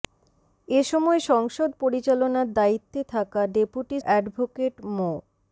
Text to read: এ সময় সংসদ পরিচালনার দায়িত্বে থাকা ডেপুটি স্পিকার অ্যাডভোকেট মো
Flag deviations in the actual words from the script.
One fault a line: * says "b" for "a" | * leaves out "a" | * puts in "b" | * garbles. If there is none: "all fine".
* leaves out "স্পিকার"